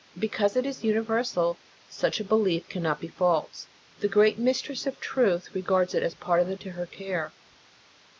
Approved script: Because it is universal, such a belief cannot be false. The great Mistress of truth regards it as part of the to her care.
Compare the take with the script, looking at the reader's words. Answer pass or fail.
pass